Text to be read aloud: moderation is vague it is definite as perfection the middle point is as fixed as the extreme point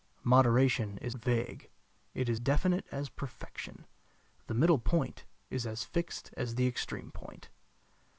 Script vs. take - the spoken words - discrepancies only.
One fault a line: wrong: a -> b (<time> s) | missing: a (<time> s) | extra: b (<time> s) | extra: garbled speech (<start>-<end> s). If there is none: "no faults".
no faults